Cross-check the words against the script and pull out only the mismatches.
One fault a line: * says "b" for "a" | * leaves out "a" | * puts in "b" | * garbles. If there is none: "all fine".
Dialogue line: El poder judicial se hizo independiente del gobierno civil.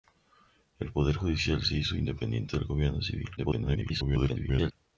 * garbles